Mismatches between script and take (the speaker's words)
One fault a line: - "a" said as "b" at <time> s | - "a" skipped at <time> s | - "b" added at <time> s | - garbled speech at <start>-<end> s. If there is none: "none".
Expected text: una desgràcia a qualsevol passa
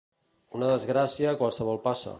none